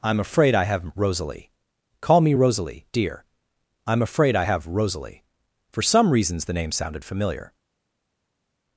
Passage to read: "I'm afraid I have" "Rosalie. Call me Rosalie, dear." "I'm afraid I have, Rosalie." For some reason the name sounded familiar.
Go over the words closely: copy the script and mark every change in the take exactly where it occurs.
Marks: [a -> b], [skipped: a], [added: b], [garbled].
"I'm afraid I have" "Rosalie. Call me Rosalie, dear." "I'm afraid I have, Rosalie." For some [reason -> reasons] the name sounded familiar.